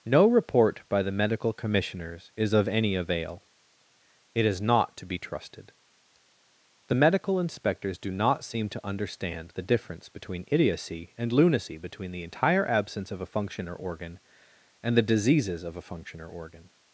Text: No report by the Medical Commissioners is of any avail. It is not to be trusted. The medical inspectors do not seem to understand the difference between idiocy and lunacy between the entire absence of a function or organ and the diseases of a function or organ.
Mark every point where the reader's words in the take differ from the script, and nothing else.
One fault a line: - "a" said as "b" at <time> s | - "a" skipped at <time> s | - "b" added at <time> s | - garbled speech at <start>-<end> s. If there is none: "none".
none